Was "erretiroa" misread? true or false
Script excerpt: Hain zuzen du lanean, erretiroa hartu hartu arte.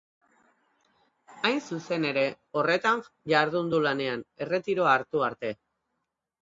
false